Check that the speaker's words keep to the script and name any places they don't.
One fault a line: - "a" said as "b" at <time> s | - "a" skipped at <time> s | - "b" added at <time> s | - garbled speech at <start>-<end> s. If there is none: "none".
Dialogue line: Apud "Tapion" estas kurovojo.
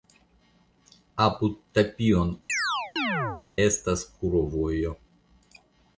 none